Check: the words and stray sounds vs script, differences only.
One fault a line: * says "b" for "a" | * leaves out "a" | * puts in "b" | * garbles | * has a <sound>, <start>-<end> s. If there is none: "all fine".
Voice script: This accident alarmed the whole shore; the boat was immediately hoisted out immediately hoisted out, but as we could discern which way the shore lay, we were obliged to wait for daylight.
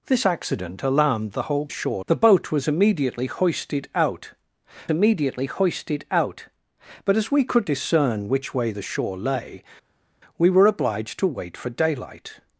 all fine